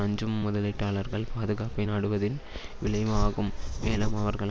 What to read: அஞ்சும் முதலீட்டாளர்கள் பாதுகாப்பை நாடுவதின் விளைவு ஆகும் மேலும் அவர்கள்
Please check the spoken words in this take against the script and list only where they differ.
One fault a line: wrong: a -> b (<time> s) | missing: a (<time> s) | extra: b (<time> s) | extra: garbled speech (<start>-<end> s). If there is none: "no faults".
no faults